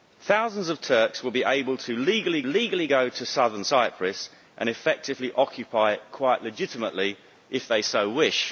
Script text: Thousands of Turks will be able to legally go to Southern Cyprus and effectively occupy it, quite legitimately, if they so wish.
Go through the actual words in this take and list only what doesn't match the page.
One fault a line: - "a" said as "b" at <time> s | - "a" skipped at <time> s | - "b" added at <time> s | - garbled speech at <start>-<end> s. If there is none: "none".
- "legally" added at 2.5 s